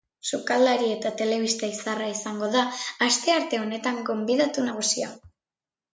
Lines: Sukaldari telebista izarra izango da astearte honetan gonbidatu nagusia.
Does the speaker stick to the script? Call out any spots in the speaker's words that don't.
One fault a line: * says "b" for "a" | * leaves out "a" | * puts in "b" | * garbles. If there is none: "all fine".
* puts in "eta"